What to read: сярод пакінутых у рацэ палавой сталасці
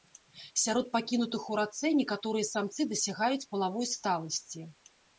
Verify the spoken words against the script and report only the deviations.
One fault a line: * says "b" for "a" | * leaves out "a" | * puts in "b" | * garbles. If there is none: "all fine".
* puts in "некаторыя самцы дасягаюць"